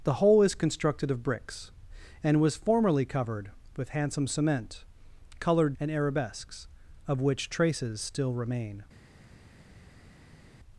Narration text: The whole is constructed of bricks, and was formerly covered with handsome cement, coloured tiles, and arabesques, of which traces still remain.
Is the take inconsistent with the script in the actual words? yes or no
yes